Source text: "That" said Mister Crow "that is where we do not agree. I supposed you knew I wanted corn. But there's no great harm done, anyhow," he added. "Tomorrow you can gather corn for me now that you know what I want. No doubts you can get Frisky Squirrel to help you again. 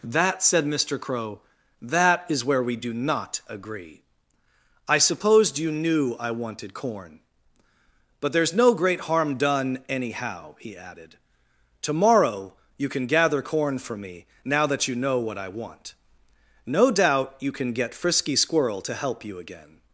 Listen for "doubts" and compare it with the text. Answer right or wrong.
wrong